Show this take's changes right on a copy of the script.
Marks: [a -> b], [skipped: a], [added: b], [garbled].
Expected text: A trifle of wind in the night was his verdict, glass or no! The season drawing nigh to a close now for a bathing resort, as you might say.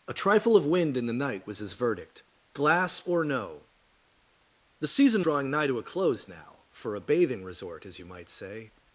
A trifle of wind in the night was his verdict, glass or no! The season drawing nigh to a close now for a bathing resort, as you might say.